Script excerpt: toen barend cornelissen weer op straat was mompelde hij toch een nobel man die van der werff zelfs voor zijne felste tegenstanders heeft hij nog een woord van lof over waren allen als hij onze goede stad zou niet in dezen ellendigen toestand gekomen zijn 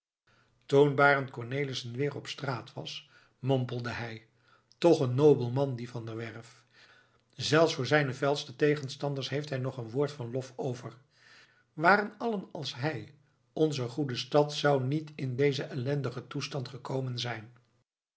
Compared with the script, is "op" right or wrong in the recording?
right